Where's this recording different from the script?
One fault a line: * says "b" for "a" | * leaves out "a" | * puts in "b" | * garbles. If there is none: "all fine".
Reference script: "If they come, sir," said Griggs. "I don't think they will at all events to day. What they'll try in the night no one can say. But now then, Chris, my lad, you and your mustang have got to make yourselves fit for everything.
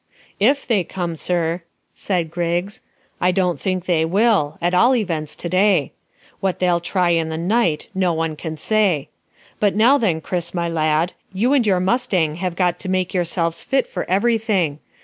all fine